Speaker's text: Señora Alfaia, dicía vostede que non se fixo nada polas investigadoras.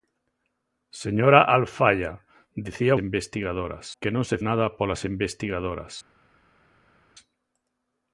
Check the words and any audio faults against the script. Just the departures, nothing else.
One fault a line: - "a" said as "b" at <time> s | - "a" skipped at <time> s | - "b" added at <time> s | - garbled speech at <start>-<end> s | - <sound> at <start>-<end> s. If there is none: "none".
- "vostede" said as "investigadoras" at 3.0 s
- "fixo" skipped at 4.4 s